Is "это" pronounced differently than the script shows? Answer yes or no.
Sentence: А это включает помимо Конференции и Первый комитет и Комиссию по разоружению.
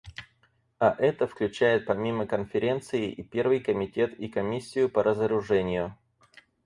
no